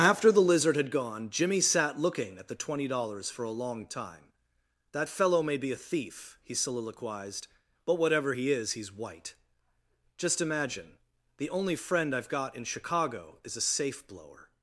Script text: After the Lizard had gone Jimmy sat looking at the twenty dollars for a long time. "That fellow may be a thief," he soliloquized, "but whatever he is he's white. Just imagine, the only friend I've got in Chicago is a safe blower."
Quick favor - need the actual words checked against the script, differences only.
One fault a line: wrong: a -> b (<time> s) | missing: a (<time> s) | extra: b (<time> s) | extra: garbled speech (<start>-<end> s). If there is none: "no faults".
no faults